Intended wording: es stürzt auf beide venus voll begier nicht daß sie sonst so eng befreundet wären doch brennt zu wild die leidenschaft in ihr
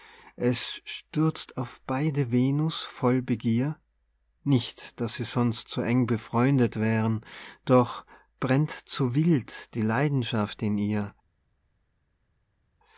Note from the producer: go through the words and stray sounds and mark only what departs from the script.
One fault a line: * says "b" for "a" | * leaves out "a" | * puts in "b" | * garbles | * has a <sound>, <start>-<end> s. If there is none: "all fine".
all fine